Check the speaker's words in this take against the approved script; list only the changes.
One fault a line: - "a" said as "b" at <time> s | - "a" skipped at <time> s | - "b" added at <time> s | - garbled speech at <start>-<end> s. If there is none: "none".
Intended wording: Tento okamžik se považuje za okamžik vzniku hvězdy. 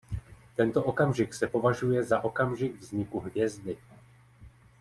none